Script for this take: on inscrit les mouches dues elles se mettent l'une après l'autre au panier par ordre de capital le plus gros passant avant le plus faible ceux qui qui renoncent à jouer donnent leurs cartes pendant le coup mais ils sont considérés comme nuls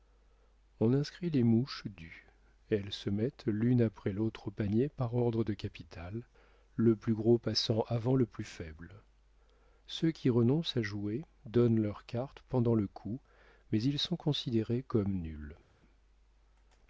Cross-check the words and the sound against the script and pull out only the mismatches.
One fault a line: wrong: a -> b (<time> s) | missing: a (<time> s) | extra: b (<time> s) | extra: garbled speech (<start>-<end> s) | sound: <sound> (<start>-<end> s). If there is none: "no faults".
missing: qui (10.3 s)